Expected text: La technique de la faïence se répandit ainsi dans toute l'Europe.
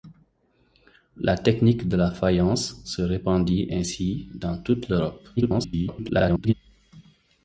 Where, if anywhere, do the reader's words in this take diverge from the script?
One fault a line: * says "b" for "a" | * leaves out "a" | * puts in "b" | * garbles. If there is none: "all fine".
* garbles